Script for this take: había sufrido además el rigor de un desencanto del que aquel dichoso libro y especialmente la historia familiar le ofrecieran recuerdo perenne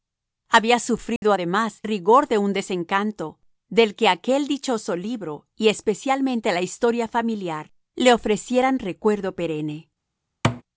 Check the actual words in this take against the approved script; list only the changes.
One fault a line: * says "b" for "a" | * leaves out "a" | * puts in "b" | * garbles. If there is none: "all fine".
* leaves out "el"